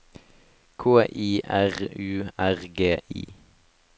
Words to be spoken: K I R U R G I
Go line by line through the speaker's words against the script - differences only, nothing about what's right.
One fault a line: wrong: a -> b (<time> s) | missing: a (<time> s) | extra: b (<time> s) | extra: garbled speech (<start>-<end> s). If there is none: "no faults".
no faults